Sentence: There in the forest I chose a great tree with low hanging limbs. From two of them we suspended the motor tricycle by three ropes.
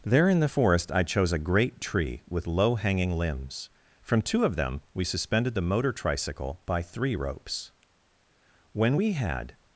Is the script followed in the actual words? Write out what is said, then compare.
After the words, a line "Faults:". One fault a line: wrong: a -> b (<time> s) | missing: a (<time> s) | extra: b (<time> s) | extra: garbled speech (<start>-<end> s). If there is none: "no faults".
There in the forest I chose a great tree with low hanging limbs. From two of them we suspended the motor tricycle by three ropes. When we had
Faults:
extra: When we had (8.7 s)